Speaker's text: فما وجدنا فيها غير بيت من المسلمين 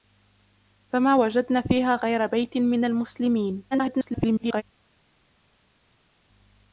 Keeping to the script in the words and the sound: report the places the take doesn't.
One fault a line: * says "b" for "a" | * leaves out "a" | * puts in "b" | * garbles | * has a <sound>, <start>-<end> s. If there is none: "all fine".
* garbles